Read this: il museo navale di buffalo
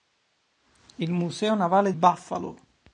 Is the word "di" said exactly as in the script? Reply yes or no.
no